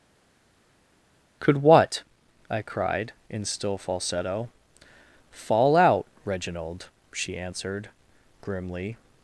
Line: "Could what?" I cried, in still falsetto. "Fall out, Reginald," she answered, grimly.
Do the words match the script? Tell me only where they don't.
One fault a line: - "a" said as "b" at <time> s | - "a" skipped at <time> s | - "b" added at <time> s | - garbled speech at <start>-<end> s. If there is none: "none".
none